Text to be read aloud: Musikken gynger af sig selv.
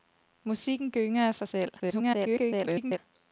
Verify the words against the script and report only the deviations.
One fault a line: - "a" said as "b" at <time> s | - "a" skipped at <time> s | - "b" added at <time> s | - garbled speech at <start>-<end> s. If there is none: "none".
- garbled speech at 1.8-3.0 s